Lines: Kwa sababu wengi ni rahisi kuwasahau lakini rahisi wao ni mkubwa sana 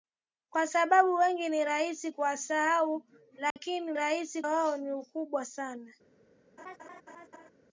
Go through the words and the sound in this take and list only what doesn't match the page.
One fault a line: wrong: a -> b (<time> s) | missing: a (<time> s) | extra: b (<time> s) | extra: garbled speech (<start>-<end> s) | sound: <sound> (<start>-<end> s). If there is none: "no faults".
sound: dropout (3.5-3.6 s)
sound: laugh (6.6-7.5 s)